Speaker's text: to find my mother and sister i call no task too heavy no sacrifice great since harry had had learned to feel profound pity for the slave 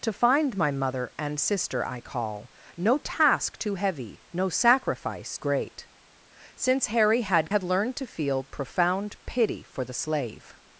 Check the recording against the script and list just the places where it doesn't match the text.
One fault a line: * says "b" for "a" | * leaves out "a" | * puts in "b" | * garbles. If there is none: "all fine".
all fine